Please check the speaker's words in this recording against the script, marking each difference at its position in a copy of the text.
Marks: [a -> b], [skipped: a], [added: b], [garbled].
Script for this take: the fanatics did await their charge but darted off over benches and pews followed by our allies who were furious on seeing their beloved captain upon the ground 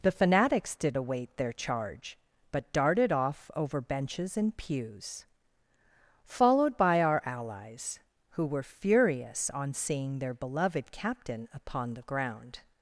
the fanatics did await their charge but darted off over benches and pews followed by our allies who were furious on seeing their beloved captain upon the ground